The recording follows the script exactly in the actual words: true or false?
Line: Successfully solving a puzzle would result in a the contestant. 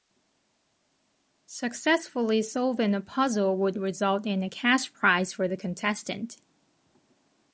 false